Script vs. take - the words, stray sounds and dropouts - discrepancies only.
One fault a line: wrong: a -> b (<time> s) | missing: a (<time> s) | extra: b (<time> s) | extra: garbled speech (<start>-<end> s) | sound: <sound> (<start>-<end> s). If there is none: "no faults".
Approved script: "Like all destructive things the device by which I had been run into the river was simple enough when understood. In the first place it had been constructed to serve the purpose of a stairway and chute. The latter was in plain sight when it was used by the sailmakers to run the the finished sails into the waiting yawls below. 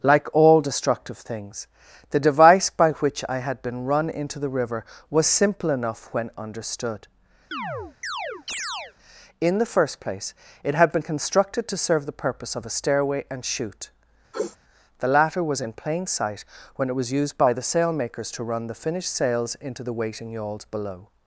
sound: chirp (7.5-8.9 s)
sound: sniff (14.3-14.6 s)
missing: the (18.8 s)